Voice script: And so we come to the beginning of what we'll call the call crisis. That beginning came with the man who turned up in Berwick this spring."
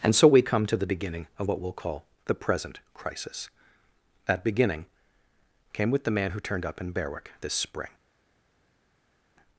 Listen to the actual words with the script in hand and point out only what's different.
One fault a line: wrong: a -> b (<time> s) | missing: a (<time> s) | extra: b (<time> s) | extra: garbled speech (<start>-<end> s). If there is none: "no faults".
wrong: call -> present (2.3 s)